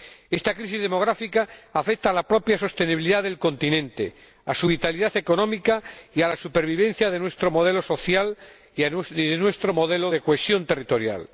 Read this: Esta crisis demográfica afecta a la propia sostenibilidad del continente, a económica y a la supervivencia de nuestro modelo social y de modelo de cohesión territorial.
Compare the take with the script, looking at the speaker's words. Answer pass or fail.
fail